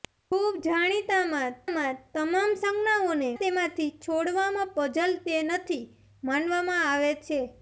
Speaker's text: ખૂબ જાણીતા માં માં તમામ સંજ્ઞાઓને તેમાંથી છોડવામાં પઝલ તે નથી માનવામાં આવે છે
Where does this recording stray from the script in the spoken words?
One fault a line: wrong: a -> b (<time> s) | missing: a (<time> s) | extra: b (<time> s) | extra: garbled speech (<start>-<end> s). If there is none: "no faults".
no faults